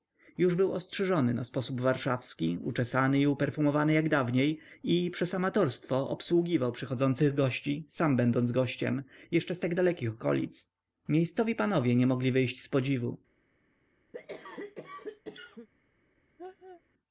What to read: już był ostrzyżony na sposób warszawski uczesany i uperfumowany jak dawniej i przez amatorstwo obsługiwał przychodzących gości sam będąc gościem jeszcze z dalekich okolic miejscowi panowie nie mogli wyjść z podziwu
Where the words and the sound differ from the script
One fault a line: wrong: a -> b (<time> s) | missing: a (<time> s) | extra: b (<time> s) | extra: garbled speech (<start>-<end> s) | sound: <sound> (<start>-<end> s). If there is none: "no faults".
extra: tak (9.6 s)
sound: cough (14.1-15.7 s)
sound: laugh (16.4-16.8 s)